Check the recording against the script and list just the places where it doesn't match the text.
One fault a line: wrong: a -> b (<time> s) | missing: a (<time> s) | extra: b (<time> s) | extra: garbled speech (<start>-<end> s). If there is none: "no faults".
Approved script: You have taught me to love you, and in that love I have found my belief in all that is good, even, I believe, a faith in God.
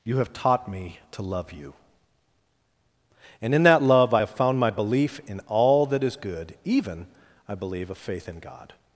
no faults